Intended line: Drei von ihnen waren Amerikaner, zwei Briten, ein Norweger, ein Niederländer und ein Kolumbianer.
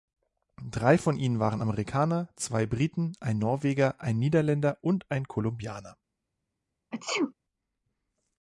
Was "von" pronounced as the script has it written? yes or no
yes